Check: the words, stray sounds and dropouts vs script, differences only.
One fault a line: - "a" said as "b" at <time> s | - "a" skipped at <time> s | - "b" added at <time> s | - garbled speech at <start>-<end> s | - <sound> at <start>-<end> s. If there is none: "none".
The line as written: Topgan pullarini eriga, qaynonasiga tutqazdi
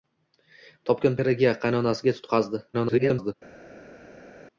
- "pullarini" skipped at 1.2 s
- garbled speech at 2.7-3.3 s